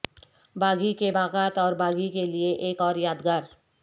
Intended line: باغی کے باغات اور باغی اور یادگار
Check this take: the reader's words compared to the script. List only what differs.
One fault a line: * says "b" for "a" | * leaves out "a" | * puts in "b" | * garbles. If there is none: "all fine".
* puts in "کے لئے ایک"